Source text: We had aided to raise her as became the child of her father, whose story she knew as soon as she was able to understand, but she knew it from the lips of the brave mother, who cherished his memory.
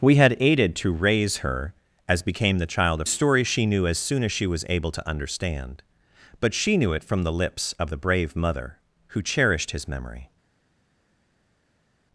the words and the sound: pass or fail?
fail